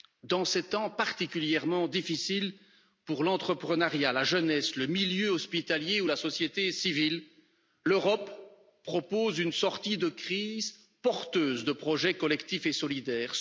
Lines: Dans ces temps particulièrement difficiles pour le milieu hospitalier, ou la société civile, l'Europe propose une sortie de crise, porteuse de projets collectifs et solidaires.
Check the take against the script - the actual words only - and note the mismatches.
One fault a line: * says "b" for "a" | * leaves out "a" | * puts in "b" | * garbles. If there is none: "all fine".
* puts in "l'entrepreneuriat la jeunesse"